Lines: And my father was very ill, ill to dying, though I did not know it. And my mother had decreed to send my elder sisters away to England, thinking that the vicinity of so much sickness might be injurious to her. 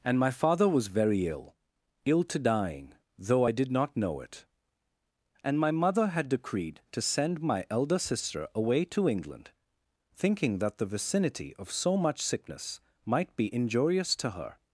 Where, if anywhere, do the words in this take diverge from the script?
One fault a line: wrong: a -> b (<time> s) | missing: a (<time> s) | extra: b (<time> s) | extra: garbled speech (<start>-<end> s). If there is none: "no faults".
wrong: sisters -> sister (8.0 s)